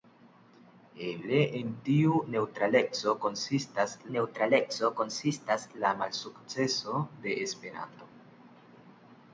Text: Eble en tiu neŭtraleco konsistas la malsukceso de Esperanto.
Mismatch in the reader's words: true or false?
true